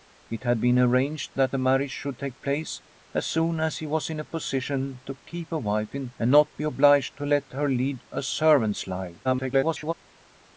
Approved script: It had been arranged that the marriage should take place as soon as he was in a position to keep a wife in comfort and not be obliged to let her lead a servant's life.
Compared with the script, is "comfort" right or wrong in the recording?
wrong